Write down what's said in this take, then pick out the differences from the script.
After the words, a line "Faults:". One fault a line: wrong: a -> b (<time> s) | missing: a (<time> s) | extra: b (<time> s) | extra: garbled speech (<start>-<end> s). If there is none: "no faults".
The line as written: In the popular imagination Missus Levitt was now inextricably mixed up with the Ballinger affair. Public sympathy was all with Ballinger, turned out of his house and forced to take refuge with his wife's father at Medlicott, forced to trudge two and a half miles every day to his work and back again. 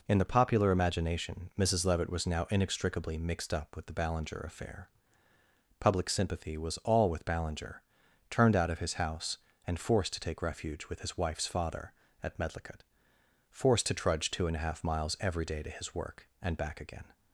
In the popular imagination Missus Levitt was now inextricably mixed up with the Ballinger affair. Public sympathy was all with Ballinger, turned out of his house and forced to take refuge with his wife's father at Medlicott, forced to trudge two and a half miles every day to his work and back again.
Faults:
no faults